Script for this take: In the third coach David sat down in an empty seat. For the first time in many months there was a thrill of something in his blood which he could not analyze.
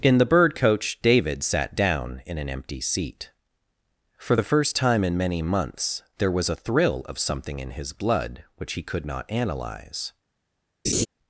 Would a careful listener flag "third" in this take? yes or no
yes